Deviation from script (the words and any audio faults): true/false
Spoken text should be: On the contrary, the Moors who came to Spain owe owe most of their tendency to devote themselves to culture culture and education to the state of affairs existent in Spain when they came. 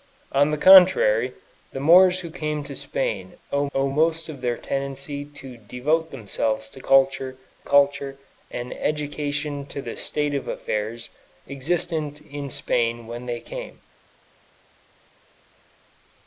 false